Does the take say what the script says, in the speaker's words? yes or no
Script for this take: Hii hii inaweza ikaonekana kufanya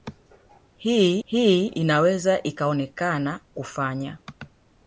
yes